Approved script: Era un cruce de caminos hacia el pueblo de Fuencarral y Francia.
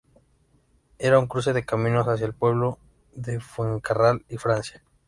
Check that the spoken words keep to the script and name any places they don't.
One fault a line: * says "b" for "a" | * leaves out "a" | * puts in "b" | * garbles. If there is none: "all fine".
all fine